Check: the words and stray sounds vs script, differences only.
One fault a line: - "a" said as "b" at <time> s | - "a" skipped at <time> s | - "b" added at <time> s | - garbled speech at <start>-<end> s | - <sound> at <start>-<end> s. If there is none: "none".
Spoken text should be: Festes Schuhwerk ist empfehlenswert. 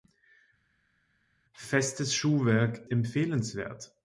- "ist" skipped at 2.9 s